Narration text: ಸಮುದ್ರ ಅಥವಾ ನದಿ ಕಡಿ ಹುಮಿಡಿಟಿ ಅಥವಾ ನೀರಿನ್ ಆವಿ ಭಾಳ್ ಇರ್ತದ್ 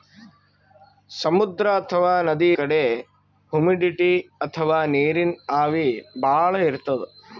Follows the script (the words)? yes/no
yes